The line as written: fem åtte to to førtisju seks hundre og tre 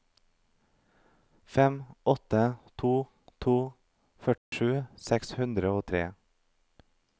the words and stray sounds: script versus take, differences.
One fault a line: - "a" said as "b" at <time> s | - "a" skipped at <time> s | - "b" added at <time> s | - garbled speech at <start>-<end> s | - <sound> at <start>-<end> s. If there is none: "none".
- dropout at 4.4-4.5 s